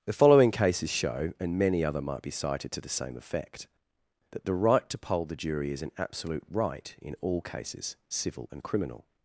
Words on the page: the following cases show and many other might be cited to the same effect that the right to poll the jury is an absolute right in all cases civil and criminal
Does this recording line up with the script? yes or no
yes